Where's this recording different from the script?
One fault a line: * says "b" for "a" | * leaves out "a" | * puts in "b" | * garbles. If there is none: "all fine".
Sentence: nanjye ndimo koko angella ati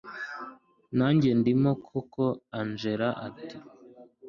all fine